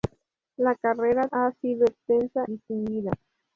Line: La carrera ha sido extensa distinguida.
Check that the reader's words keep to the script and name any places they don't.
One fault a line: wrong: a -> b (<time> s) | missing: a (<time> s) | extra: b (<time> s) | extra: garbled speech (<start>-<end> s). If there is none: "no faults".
no faults